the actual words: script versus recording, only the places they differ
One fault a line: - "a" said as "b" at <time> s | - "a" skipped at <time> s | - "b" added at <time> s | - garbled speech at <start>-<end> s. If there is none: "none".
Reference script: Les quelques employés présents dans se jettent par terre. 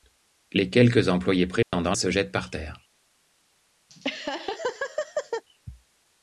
none